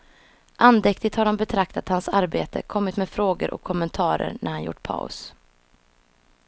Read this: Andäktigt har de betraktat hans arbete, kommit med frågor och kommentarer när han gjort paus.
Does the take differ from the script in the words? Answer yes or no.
no